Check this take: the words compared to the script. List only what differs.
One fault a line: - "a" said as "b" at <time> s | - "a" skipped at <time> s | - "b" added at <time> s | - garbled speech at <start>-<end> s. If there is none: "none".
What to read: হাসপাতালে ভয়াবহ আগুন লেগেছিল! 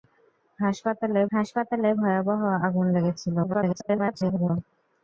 - "হাসপাতালে" added at 1.3 s
- garbled speech at 3.4-4.5 s